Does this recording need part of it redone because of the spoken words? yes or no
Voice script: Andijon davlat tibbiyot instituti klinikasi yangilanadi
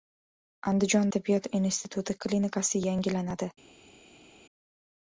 yes